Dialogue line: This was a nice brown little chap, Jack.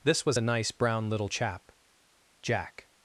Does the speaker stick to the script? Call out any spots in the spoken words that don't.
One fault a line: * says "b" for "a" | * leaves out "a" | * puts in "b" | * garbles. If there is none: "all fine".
all fine